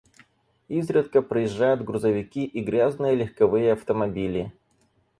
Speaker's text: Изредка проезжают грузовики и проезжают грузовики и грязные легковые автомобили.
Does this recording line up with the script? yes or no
no